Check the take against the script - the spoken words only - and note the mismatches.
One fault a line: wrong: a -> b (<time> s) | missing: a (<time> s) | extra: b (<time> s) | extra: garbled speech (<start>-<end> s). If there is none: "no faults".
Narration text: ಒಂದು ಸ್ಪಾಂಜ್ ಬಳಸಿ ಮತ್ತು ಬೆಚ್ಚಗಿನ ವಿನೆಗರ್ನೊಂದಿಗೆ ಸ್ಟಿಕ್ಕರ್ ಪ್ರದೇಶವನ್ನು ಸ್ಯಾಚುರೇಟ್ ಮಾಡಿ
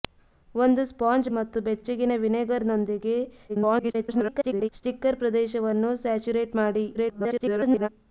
missing: ಬಳಸಿ (1.3 s)
extra: garbled speech (3.5-4.7 s)
extra: garbled speech (6.9-7.9 s)